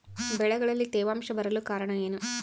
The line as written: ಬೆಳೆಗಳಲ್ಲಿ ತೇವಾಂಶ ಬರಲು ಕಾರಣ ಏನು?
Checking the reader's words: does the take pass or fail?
pass